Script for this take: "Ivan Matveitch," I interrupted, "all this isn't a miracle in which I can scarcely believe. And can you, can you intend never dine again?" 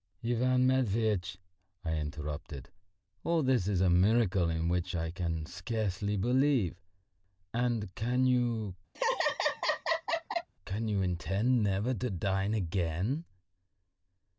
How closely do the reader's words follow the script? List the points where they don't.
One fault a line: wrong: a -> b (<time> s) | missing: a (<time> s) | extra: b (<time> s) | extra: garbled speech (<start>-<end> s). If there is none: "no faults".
wrong: isn't -> is (3.7 s)
extra: to (11.9 s)